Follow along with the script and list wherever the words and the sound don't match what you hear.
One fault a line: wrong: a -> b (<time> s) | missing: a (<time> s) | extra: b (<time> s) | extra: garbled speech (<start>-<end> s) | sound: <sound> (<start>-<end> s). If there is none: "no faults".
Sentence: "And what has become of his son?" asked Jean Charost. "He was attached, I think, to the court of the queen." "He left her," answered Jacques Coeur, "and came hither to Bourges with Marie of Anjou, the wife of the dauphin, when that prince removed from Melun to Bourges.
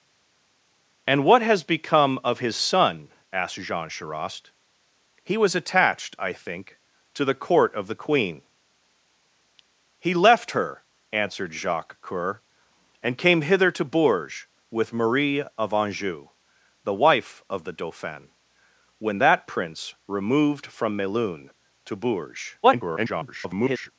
extra: garbled speech (22.6-23.9 s)